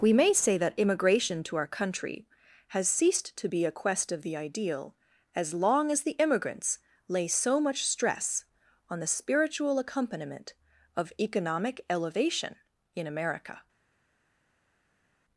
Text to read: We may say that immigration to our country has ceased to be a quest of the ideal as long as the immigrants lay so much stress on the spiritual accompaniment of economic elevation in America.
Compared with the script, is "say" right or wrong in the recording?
right